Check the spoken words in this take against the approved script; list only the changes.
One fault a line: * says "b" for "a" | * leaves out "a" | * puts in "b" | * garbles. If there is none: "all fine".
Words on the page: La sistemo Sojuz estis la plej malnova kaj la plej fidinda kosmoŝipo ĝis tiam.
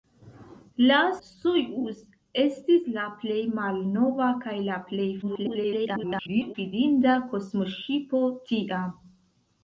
* leaves out "sistemo"
* garbles
* leaves out "ĝis"